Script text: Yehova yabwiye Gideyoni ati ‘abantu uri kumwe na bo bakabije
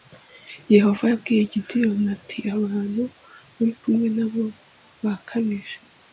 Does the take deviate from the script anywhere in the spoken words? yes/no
no